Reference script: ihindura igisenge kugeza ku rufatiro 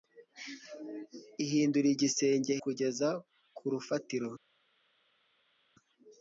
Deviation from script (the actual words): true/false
false